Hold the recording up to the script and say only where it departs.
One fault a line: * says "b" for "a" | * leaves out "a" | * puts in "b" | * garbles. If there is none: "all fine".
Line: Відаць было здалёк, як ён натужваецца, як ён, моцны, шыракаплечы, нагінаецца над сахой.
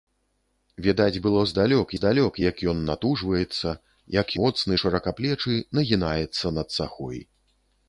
* puts in "здалёк"
* leaves out "ён"